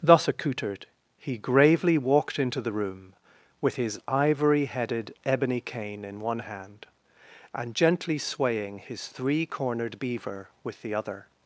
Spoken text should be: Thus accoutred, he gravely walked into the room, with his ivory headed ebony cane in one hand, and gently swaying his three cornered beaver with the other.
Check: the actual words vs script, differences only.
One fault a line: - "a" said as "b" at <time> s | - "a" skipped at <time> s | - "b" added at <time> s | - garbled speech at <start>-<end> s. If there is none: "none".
none